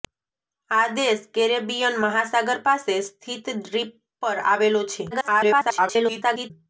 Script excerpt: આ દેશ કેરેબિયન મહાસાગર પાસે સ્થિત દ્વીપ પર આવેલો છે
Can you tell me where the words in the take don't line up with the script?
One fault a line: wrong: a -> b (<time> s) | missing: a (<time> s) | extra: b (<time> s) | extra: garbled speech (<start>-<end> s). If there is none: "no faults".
extra: garbled speech (5.1-6.5 s)